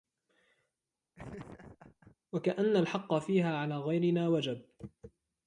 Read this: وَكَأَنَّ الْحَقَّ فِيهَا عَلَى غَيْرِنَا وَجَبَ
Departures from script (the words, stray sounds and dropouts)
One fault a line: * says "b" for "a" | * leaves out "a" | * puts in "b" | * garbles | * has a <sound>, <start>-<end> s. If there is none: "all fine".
* has a laugh, 1.1-2.2 s